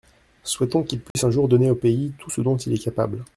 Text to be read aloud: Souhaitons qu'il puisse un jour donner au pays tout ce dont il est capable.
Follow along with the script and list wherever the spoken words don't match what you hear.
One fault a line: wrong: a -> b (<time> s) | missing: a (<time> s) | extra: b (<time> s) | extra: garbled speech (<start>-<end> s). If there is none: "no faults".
no faults